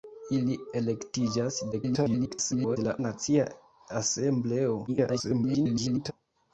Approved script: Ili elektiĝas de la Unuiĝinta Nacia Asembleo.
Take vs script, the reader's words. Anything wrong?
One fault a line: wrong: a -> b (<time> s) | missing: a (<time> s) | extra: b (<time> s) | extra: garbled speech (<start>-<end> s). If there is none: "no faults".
extra: garbled speech (1.7-2.8 s)
missing: Unuiĝinta (2.9 s)
extra: garbled speech (4.9-6.1 s)